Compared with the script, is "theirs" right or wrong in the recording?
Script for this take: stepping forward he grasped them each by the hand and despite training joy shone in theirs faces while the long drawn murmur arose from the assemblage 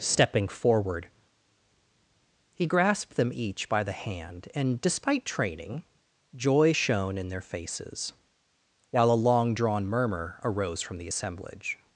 wrong